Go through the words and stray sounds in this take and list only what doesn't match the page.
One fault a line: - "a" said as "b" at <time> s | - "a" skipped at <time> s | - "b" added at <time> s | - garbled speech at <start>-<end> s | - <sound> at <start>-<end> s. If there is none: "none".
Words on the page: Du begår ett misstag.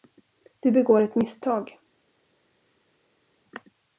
none